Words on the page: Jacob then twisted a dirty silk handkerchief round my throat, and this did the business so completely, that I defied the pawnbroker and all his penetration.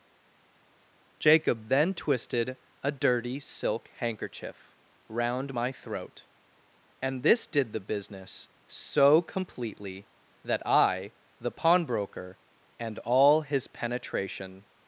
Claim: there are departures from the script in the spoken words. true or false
true